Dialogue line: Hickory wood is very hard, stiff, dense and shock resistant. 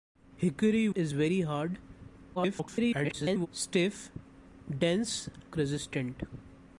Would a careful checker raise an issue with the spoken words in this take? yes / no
yes